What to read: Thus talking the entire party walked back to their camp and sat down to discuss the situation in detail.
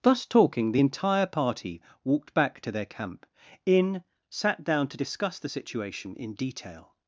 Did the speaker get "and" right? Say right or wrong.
wrong